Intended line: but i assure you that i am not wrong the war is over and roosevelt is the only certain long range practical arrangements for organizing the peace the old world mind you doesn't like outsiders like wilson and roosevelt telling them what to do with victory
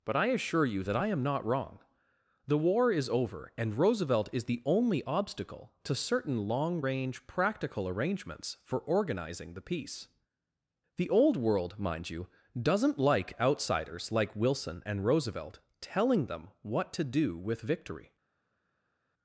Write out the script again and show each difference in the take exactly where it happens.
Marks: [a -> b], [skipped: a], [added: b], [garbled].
but i assure you that i am not wrong the war is over and roosevelt is the only [added: obstacle to] certain long range practical arrangements for organizing the peace the old world mind you doesn't like outsiders like wilson and roosevelt telling them what to do with victory